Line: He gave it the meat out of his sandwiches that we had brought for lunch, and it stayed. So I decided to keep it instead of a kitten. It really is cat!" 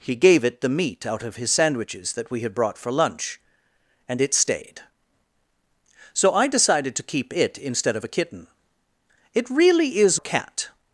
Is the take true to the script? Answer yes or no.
yes